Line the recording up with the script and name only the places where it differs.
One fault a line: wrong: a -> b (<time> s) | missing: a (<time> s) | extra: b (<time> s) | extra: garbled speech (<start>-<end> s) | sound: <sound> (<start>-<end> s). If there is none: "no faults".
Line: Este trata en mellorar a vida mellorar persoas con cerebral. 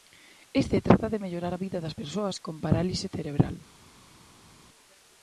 wrong: en -> de (1.1 s)
wrong: mellorar -> das (1.8 s)
extra: parálise (2.6 s)